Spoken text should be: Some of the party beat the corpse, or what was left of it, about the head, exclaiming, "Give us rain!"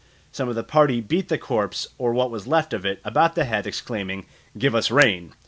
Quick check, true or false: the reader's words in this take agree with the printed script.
true